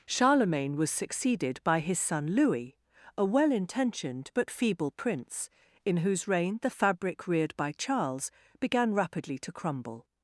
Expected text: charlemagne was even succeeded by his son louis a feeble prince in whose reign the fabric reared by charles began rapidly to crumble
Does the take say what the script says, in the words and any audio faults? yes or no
no